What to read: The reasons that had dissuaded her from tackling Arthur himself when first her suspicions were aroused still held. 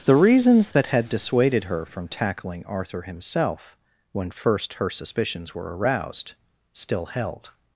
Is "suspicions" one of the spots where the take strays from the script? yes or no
no